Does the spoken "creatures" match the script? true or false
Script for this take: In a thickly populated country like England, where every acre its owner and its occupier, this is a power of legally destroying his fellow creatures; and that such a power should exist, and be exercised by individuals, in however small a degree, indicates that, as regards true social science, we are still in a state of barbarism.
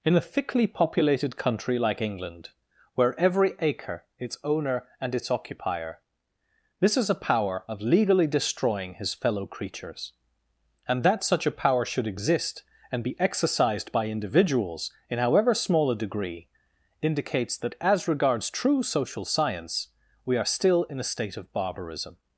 true